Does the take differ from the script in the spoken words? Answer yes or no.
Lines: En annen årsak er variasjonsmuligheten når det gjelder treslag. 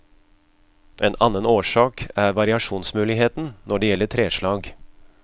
no